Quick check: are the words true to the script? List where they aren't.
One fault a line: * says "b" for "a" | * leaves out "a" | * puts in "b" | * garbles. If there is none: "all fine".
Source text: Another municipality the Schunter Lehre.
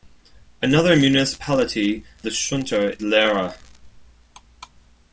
all fine